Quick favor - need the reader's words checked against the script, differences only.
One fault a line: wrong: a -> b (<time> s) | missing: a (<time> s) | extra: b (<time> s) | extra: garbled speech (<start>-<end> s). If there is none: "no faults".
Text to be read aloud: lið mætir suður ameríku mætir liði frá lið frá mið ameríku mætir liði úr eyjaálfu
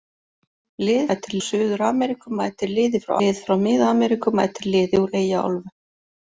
no faults